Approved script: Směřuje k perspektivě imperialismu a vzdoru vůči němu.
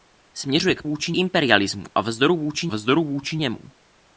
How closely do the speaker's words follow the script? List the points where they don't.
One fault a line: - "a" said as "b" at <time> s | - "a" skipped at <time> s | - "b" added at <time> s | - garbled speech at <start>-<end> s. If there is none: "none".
- "perspektivě" said as "vůči" at 0.8 s
- "vzdoru vůči" added at 2.7 s